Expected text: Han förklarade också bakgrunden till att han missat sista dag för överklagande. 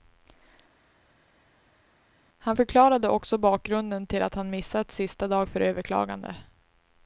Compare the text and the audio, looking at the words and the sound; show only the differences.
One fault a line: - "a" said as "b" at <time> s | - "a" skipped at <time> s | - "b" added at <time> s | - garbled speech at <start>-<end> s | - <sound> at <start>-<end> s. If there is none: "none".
none